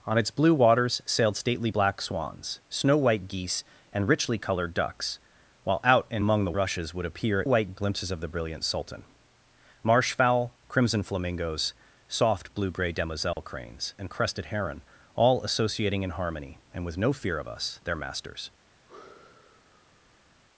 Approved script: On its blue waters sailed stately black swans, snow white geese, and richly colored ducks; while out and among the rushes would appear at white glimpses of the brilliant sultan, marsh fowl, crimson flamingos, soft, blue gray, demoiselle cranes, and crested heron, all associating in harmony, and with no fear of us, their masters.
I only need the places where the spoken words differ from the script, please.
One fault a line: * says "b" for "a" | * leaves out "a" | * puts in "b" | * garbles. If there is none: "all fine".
all fine